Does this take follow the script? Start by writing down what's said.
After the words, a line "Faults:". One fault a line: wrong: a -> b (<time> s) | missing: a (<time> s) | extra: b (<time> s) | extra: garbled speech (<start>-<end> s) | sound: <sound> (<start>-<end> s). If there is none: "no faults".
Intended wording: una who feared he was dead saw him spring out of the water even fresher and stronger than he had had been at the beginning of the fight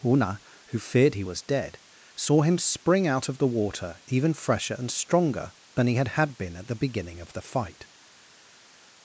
una who feared he was dead saw him spring out of the water even fresher and stronger than he had had been at the beginning of the fight
Faults:
no faults